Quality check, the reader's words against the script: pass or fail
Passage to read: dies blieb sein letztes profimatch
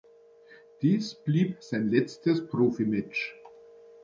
pass